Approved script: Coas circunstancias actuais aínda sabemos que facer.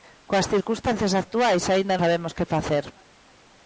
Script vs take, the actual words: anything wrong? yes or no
no